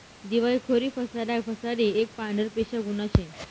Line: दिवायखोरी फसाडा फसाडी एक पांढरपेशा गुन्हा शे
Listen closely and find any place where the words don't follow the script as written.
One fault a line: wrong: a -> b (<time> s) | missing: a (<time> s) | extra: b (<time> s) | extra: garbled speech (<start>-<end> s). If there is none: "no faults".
no faults